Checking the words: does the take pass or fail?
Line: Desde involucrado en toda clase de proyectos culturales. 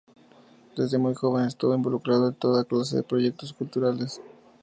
fail